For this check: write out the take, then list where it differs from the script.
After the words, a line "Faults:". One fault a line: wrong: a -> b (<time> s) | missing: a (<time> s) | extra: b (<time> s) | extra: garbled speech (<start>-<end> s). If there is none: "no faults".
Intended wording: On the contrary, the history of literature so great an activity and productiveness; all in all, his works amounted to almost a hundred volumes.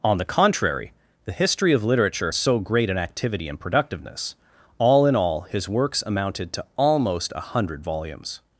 On the contrary, the history of literature so great an activity and productiveness; all in all, his works amounted to almost a hundred volumes.
Faults:
no faults